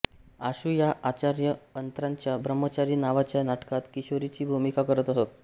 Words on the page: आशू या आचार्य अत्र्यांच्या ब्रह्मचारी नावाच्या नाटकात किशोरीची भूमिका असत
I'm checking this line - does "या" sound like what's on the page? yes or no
yes